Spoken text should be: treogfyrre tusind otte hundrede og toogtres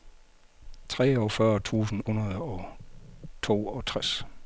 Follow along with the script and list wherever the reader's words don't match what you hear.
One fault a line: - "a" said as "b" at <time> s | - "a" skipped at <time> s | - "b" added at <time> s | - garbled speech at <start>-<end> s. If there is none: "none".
- "otte" skipped at 2.0 s